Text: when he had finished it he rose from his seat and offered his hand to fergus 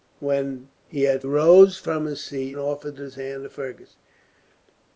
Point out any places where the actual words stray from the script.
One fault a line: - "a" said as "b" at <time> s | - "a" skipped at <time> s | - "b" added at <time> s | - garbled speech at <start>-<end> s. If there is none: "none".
- "finished it he" skipped at 1.2 s
- "and" skipped at 2.6 s